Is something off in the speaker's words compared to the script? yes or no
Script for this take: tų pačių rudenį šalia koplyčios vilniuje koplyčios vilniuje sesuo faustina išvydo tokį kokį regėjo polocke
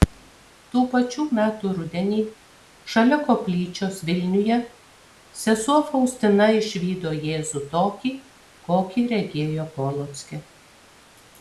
yes